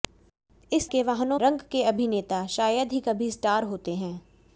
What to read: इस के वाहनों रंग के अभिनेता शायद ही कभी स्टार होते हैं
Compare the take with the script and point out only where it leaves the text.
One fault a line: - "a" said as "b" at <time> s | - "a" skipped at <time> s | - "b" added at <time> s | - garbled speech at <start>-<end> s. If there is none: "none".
none